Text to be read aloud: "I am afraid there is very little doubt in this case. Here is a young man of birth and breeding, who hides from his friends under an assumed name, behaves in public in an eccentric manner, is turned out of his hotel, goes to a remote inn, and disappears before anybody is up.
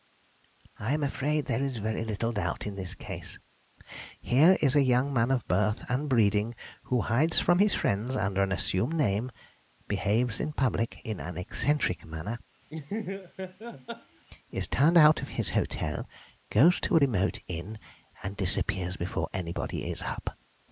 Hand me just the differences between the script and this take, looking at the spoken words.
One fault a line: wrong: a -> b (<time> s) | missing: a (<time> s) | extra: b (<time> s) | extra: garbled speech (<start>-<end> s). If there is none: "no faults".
no faults